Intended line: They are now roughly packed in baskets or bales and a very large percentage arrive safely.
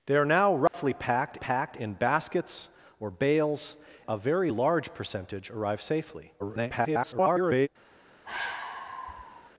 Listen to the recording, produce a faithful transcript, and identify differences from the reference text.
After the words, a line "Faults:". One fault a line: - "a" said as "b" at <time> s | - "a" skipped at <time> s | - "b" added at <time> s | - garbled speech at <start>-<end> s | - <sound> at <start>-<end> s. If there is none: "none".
They are now roughly packed packed in baskets or bales a very large percentage arrive safely. [garbled]
Faults:
- dropout at 0.7-0.7 s
- "packed" added at 1.3 s
- "and" skipped at 3.8 s
- garbled speech at 6.4-7.7 s
- sigh at 8.3-9.5 s